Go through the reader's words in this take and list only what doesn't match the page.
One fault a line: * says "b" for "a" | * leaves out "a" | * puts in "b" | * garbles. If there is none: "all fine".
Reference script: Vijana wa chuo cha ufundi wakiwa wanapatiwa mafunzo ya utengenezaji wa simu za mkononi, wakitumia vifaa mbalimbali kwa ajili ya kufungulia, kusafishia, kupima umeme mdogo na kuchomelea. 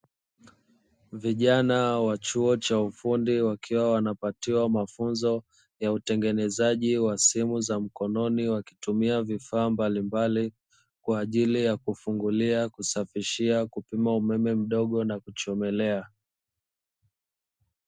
all fine